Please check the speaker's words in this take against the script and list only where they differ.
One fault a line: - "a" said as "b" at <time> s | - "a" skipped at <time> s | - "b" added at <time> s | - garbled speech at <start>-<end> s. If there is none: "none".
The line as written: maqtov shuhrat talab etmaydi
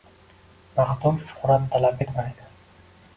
none